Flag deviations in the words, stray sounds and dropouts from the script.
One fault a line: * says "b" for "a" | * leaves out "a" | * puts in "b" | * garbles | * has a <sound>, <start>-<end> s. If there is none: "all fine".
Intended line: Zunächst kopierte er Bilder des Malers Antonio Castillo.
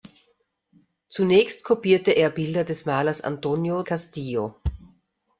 all fine